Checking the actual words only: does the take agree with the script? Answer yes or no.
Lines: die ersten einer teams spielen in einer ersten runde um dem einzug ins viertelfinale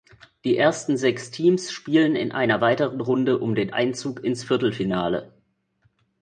no